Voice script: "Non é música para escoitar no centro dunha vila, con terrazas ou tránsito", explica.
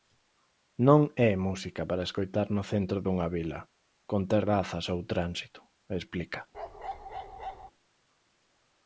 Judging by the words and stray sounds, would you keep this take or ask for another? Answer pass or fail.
fail